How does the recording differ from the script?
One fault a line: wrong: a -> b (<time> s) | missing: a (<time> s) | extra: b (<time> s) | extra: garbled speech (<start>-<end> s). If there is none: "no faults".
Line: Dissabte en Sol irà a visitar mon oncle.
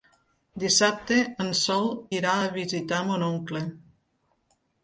no faults